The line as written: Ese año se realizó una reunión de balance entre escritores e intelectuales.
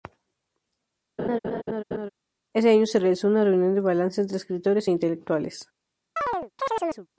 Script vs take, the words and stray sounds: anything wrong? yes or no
yes